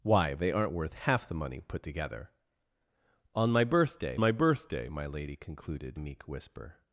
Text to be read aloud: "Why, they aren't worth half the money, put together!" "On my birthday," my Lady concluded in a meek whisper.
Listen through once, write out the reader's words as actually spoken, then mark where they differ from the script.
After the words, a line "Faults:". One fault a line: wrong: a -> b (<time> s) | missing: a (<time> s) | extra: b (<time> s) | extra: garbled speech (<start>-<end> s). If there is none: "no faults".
"Why, they aren't worth half the money, put together!" "On my birthday my birthday," my Lady concluded a meek whisper.
Faults:
extra: birthday my (4.3 s)
missing: in (6.0 s)